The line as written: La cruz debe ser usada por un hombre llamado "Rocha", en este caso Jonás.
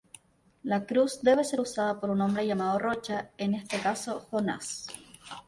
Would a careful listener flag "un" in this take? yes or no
no